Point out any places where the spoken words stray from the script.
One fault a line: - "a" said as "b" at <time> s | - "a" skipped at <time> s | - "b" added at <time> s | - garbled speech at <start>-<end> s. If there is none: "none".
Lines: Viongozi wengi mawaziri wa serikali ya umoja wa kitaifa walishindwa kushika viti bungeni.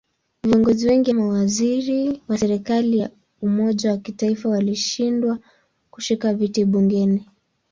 none